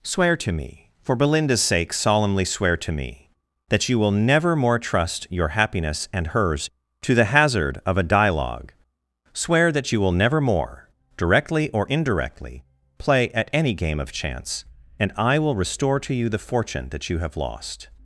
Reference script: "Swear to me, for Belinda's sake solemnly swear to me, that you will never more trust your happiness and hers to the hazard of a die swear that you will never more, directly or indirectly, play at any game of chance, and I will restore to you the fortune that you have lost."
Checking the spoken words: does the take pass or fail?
fail